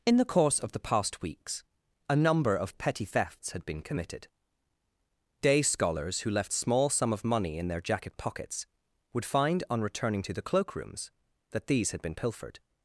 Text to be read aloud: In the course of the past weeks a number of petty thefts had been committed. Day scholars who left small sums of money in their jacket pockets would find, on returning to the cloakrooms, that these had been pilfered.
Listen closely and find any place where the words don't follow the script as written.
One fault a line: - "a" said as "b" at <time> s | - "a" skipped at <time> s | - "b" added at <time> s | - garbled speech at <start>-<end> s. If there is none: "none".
- "sums" said as "sum" at 6.9 s